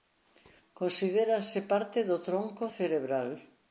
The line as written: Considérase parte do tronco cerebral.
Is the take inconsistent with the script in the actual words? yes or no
no